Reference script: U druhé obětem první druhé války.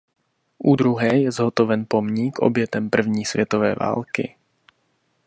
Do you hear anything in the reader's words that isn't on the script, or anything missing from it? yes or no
yes